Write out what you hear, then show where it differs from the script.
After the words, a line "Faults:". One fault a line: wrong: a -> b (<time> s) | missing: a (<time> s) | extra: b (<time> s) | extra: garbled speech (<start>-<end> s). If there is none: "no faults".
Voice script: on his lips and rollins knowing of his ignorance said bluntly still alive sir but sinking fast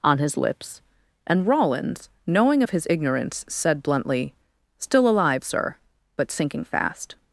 on his lips and rollins knowing of his ignorance said bluntly still alive sir but sinking fast
Faults:
no faults